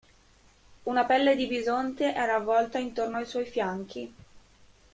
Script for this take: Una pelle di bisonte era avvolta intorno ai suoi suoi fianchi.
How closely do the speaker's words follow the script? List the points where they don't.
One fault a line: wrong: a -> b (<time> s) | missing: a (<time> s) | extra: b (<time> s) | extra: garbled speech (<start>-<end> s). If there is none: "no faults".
missing: suoi (3.5 s)